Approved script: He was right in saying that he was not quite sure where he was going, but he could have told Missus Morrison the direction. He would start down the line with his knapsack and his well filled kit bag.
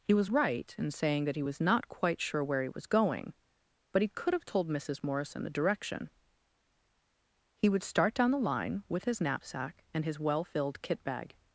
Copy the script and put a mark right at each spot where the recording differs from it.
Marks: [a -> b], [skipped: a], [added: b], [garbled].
He was right in saying that he was not quite sure where he was going, but he could have told Missus Morrison the direction. He would start down the line with his knapsack and his well filled kit bag.